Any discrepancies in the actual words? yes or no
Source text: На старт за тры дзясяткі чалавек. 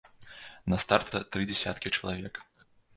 no